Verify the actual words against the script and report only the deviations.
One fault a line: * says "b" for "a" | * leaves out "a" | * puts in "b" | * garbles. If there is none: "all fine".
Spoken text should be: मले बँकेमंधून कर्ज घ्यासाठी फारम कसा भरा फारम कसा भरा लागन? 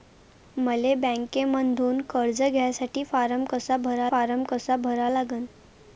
all fine